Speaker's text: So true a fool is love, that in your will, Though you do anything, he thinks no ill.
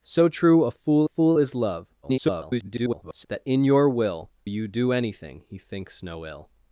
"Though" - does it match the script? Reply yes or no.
no